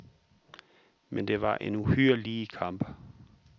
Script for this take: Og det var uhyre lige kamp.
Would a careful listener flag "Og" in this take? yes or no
yes